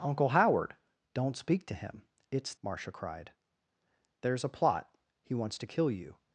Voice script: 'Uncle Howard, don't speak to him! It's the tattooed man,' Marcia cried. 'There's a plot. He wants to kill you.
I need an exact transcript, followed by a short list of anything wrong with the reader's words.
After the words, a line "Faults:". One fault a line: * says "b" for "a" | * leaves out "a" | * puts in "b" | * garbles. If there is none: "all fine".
'Uncle Howard, don't speak to him! It's,' Marcia cried. 'There's a plot. He wants to kill you.
Faults:
* leaves out "the tattooed man"